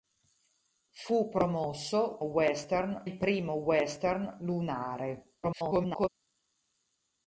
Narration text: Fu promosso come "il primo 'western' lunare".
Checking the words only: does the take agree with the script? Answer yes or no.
no